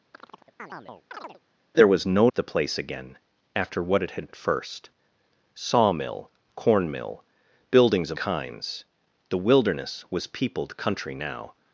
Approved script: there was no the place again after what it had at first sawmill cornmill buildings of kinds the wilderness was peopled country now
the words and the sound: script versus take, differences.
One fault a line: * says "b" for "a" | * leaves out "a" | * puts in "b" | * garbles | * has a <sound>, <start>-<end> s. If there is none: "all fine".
* has a chirp, 0.1-1.4 s